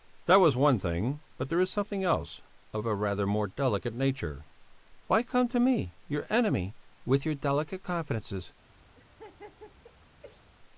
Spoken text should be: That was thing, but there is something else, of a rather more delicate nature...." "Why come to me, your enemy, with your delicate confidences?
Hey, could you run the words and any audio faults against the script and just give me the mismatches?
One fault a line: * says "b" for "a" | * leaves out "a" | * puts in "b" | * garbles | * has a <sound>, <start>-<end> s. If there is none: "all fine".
* puts in "one"
* has a laugh, 8.9-10.5 s